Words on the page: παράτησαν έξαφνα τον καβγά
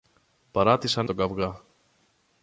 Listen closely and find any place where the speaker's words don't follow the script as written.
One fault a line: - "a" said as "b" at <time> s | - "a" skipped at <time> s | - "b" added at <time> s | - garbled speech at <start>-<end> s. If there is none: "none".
- "έξαφνα" skipped at 1.1 s